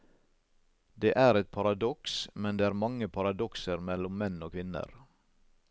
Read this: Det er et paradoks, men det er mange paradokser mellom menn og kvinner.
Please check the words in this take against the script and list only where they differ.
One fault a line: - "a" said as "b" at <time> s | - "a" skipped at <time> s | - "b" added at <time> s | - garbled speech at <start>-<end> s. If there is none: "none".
none